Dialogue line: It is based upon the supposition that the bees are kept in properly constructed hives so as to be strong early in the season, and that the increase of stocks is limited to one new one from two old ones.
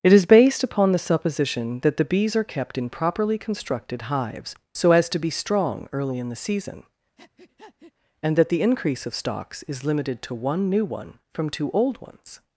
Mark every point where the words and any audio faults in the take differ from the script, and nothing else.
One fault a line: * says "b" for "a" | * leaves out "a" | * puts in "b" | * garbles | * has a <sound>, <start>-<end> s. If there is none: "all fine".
* has a breath, 7.2-7.9 s